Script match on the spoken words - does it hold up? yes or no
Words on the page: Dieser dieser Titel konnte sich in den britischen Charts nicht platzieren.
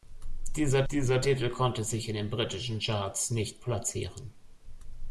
yes